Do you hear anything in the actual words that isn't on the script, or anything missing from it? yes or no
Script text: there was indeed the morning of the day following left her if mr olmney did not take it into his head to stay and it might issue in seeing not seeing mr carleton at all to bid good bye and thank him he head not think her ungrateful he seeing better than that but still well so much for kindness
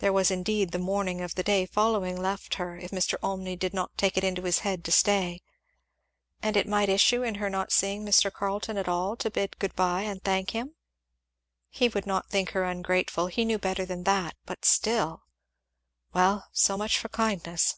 yes